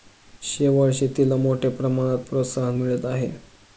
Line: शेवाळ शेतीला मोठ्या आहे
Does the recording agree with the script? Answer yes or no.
no